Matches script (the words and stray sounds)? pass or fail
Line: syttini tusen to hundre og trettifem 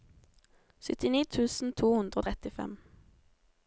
pass